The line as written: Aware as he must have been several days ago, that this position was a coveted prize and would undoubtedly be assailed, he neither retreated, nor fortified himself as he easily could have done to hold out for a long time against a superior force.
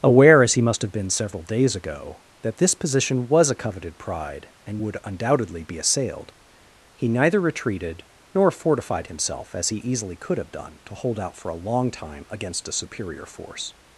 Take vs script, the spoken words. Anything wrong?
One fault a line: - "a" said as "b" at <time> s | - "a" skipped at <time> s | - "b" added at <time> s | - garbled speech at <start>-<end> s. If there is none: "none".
- "prize" said as "pride" at 4.0 s